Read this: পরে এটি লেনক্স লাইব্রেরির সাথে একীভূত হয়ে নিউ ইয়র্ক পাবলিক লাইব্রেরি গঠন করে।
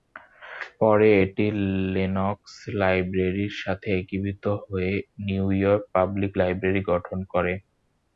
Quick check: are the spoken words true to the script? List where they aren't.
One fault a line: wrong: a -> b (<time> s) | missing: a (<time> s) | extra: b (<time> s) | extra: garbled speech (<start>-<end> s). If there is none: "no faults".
no faults